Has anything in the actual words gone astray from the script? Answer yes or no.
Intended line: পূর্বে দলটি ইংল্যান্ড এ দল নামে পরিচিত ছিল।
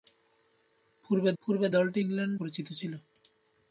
yes